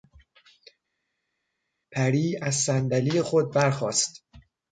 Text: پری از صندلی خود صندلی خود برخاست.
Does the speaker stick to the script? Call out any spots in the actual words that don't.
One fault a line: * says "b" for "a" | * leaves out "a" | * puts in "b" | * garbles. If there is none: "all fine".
* leaves out "صندلی خود"